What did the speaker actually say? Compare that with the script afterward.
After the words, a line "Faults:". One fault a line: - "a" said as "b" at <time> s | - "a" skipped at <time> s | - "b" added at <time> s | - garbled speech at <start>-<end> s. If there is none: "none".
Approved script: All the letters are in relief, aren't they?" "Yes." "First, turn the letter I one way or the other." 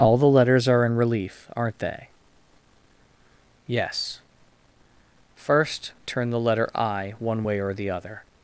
All the letters are in relief, aren't they?" "Yes." "First, turn the letter I one way or the other."
Faults:
none